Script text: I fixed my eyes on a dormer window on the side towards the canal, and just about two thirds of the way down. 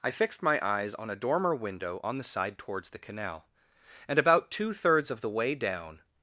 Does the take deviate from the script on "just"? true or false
true